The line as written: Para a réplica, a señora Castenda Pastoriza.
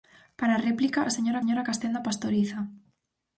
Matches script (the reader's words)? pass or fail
fail